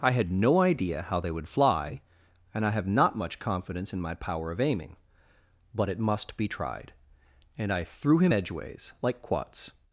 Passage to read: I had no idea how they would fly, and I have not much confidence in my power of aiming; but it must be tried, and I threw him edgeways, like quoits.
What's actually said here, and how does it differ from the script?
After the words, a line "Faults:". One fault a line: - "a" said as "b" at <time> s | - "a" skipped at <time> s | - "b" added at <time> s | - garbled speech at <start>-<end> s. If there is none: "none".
I had no idea how they would fly, and I have not much confidence in my power of aiming; but it must be tried, and I threw him edgeways, like quoits.
Faults:
none